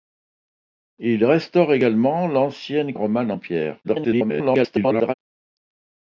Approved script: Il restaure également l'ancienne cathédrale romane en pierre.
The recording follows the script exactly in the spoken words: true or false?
false